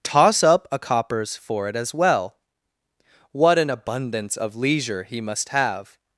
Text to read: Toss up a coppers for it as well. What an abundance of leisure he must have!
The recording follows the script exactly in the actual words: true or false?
true